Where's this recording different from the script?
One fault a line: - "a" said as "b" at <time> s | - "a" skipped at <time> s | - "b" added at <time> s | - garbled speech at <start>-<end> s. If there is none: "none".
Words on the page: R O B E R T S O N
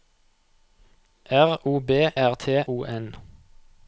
- "E" skipped at 2.1 s
- "S" skipped at 2.6 s